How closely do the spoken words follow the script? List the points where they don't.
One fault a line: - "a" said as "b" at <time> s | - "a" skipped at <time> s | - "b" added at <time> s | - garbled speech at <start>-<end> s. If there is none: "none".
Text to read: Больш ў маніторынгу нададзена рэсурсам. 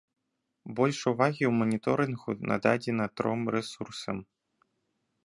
- "увагі" added at 1.1 s
- "тром" added at 3.2 s